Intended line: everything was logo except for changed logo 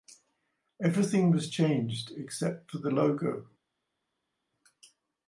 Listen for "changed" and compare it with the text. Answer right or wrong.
wrong